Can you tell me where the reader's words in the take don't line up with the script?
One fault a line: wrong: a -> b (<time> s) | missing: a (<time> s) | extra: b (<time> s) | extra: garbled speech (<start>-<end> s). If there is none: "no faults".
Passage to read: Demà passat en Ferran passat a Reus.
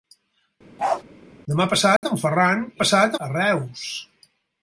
no faults